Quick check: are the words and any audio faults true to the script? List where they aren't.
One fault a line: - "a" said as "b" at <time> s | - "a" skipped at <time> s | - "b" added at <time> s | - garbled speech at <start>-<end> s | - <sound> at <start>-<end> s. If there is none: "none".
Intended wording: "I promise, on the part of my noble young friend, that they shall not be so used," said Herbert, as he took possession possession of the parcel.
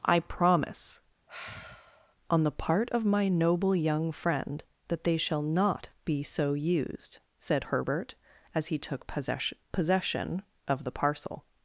- sigh at 1.3-2.2 s